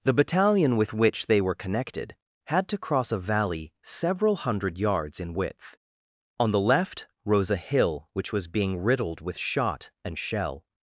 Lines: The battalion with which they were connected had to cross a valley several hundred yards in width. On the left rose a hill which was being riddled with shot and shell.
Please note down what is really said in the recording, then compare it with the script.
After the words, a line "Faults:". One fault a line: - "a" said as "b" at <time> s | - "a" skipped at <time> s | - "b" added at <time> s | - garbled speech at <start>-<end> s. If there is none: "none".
The battalion with which they were connected had to cross a valley several hundred yards in width. On the left rose a hill which was being riddled with shot and shell.
Faults:
none